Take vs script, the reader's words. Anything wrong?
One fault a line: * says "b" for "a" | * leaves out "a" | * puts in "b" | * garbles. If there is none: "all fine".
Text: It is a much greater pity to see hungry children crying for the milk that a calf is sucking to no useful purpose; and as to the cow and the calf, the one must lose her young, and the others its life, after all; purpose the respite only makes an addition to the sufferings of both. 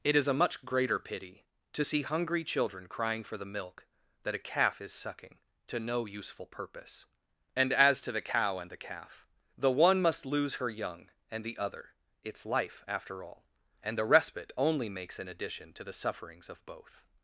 * says "other" for "others"
* says "and" for "purpose"